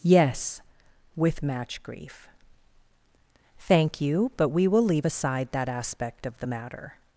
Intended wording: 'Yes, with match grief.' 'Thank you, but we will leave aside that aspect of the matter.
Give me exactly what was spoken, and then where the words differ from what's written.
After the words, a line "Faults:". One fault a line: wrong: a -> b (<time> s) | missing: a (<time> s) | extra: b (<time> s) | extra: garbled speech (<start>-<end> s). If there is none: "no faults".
'Yes, with match grief.' 'Thank you, but we will leave aside that aspect of the matter.
Faults:
no faults